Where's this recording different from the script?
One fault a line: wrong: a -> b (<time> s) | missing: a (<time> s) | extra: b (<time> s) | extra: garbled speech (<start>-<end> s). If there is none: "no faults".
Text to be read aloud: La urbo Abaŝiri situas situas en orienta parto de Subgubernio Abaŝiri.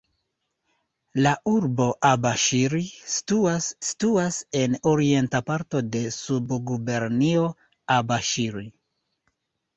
no faults